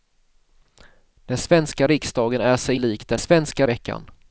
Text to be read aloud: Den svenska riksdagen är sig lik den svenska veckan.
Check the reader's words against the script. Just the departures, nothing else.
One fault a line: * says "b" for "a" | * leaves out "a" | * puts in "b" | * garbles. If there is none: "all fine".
all fine